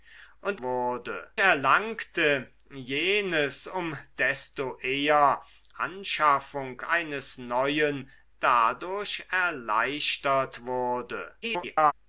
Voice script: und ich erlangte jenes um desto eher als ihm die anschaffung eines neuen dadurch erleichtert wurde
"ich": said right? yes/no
no